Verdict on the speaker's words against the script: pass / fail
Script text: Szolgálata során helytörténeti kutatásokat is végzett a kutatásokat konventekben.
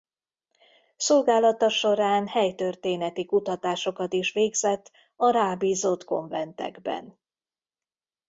fail